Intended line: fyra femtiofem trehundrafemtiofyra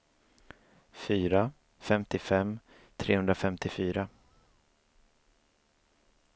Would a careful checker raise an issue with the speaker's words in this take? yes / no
no